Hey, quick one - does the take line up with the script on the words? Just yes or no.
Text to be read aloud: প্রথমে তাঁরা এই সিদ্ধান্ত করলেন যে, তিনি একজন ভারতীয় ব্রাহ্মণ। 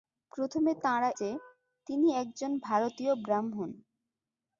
no